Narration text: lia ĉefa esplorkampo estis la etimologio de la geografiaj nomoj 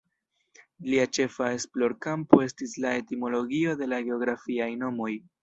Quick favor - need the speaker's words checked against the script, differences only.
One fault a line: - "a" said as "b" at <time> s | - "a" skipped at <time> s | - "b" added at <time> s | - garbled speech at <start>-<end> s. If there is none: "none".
none